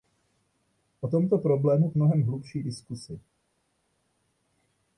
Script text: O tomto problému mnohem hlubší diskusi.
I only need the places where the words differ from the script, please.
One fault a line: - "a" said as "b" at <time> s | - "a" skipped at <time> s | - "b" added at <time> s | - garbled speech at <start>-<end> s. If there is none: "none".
none